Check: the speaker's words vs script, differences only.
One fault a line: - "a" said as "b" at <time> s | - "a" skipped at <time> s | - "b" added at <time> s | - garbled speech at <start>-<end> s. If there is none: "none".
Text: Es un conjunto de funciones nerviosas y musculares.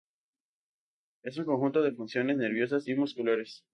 none